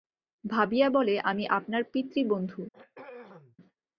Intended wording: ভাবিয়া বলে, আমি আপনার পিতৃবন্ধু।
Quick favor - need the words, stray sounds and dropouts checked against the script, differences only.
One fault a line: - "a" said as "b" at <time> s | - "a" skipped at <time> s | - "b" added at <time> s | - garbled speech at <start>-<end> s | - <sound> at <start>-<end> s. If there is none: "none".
- throat clearing at 2.7-3.6 s